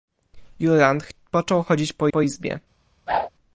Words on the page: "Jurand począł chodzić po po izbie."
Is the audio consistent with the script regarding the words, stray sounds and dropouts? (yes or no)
no